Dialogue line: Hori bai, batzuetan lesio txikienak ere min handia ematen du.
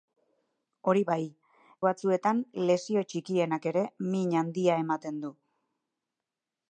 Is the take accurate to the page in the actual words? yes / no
yes